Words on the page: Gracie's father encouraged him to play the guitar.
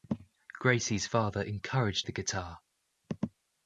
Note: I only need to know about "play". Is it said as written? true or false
false